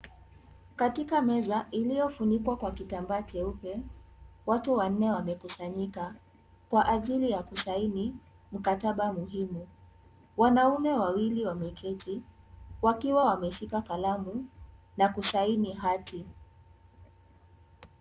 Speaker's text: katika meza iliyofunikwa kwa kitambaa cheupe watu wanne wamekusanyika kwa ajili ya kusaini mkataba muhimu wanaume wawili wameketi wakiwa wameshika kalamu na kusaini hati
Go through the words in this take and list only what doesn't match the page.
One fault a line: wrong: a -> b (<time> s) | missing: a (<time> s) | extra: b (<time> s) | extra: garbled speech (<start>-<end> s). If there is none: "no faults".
no faults